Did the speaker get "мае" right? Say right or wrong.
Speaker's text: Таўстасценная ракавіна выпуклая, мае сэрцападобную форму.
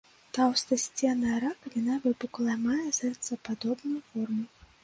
right